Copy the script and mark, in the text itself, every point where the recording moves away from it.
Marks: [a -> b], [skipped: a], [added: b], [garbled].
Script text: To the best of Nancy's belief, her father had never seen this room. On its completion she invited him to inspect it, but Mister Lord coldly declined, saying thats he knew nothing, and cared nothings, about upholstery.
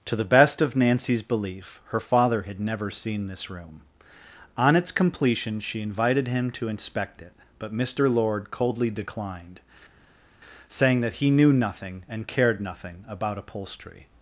To the best of Nancy's belief, her father had never seen this room. On its completion she invited him to inspect it, but Mister Lord coldly declined, saying [thats -> that] he knew nothing, and cared [nothings, -> nothing] about upholstery.